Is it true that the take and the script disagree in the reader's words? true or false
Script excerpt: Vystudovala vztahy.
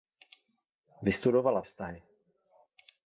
false